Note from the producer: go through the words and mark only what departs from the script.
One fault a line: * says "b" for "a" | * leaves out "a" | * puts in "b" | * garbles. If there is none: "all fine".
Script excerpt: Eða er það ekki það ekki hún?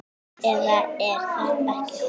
* leaves out "það ekki"